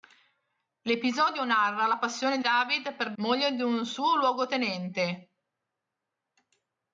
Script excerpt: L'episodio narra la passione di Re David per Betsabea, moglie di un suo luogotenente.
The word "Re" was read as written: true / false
false